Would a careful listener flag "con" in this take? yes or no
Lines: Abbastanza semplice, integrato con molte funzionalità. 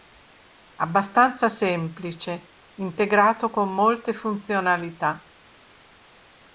no